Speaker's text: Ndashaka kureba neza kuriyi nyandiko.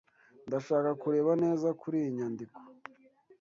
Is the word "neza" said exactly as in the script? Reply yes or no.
yes